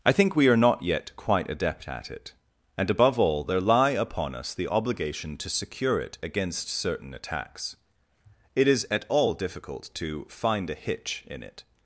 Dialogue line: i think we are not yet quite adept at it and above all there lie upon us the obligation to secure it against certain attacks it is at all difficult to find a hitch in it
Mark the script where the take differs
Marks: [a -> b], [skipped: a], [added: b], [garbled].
i think we are not yet quite adept at it and above all there lie upon us the obligation to secure it against certain attacks it is at all difficult to find a hitch in it